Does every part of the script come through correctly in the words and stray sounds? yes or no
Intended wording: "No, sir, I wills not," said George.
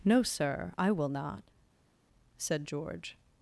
no